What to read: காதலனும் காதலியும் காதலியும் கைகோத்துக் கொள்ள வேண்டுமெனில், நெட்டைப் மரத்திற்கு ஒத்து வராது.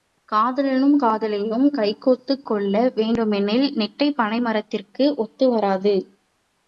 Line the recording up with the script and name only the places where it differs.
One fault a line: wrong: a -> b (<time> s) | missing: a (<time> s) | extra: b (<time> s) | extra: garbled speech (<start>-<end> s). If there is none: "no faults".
missing: காதலியும் (1.7 s)
extra: பனை (4.2 s)